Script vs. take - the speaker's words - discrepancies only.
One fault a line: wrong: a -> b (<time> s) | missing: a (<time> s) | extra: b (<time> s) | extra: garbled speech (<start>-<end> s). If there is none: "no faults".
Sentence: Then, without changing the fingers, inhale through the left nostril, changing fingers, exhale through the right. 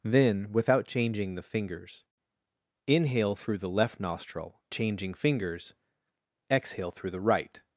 no faults